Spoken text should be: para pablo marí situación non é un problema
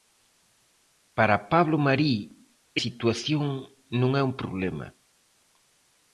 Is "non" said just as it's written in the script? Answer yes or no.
yes